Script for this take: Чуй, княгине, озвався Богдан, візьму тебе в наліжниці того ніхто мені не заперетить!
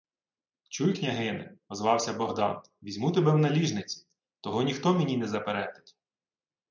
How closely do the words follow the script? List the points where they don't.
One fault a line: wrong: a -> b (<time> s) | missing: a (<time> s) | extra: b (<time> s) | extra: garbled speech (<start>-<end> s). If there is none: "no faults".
no faults